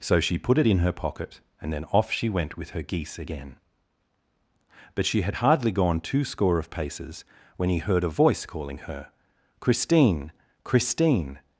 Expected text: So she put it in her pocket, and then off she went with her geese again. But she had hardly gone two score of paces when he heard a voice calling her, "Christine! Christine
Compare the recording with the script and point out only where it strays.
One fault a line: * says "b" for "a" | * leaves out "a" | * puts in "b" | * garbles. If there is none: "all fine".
all fine